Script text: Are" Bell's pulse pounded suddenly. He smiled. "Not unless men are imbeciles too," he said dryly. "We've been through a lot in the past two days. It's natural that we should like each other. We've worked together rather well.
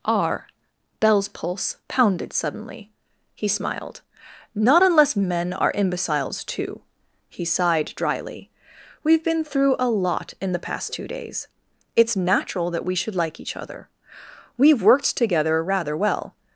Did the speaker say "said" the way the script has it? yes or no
no